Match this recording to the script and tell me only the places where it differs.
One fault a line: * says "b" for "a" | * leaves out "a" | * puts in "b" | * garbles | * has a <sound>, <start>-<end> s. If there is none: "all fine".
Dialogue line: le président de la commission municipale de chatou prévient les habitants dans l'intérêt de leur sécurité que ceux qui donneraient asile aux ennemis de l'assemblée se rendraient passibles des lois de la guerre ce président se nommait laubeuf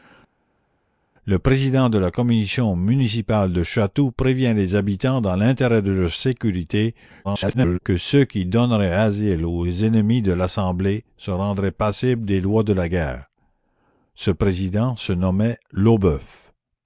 * garbles